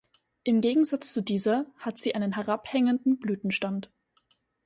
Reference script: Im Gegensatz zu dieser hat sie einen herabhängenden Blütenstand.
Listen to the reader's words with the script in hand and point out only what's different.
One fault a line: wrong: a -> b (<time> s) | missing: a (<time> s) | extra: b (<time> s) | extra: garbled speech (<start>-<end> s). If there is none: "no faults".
no faults